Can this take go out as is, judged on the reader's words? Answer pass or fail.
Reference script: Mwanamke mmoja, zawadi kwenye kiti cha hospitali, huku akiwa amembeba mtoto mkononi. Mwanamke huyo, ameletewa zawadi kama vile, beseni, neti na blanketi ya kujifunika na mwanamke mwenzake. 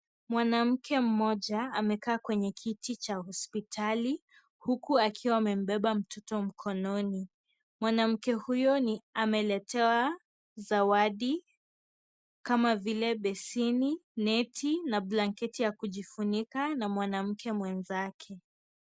fail